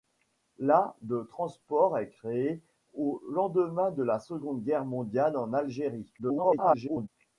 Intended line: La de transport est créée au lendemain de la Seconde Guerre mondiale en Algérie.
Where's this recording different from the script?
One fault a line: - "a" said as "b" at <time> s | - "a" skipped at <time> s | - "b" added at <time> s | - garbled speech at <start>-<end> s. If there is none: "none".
- garbled speech at 6.2-7.1 s